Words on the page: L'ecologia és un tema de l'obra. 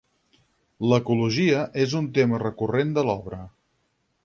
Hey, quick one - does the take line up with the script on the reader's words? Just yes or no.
no